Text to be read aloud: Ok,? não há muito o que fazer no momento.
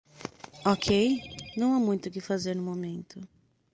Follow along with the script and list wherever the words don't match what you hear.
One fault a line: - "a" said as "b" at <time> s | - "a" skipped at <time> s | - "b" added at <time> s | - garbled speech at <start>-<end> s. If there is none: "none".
none